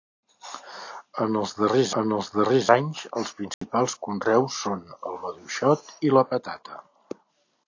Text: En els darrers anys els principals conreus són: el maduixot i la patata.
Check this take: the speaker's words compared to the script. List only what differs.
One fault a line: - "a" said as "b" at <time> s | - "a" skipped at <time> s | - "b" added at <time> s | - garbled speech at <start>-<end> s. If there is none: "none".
- "en els darrers" added at 2.0 s